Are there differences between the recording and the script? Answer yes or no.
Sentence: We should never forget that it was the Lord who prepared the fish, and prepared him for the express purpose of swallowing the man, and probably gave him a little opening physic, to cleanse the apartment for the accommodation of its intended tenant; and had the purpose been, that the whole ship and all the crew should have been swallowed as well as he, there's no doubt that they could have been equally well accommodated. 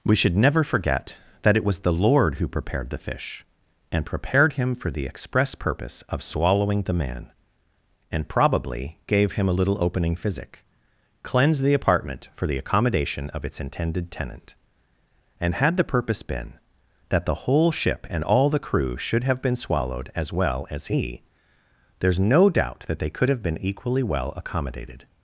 yes